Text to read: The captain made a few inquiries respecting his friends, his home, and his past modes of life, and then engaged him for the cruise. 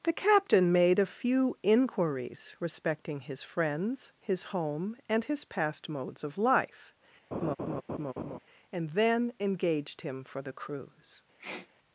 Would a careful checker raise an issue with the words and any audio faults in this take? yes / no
yes